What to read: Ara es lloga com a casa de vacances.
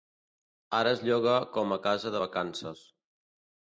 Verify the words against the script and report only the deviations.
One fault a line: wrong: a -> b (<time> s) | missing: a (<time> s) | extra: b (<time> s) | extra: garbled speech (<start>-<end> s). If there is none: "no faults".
no faults